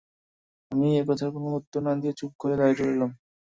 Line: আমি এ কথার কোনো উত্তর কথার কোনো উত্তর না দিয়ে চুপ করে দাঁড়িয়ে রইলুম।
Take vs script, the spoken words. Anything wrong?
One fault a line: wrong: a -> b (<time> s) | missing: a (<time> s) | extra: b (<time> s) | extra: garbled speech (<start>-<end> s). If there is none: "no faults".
missing: কথার কোনো উত্তর (1.8 s)